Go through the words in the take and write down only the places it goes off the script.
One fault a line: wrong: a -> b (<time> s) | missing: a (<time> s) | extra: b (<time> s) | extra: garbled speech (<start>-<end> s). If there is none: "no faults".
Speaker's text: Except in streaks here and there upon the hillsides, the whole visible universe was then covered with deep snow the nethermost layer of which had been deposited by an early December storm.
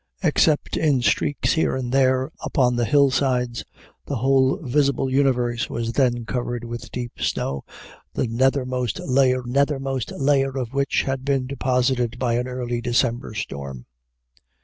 extra: nethermost layer (9.4 s)